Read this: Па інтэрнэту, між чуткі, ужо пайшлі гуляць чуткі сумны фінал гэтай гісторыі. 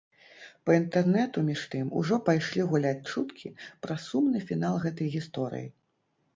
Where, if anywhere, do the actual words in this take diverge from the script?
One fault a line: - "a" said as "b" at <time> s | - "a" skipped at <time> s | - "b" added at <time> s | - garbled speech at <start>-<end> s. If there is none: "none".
- "чуткі" said as "тым" at 1.7 s
- "пра" added at 3.9 s